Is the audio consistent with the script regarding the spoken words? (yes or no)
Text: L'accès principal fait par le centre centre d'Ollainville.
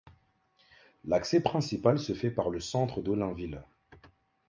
no